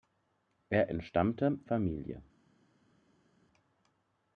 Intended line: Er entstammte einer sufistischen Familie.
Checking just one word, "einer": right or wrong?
wrong